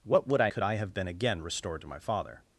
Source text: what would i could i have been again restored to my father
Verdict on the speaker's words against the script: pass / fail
pass